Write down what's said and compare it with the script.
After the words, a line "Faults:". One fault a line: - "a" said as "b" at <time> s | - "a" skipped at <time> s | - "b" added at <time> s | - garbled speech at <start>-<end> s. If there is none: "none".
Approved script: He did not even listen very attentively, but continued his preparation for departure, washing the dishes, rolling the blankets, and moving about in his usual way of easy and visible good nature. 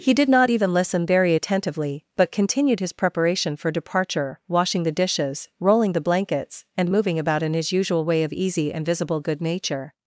He did not even listen very attentively, but continued his preparation for departure, washing the dishes, rolling the blankets, and moving about in his usual way of easy and visible good nature.
Faults:
none